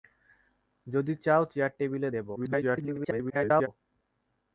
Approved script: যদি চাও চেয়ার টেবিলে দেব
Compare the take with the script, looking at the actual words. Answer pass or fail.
fail